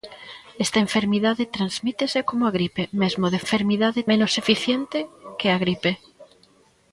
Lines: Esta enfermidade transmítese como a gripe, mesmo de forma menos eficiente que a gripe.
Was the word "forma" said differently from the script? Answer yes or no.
yes